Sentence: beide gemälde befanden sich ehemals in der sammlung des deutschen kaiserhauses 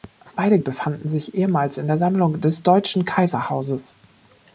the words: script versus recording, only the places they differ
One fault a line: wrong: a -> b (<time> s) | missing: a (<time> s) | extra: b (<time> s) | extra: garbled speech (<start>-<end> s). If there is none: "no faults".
missing: gemälde (0.6 s)